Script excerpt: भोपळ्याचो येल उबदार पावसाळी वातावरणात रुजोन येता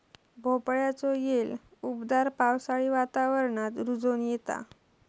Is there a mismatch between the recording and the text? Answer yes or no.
no